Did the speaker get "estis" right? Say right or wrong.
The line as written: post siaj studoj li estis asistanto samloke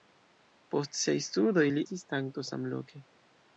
wrong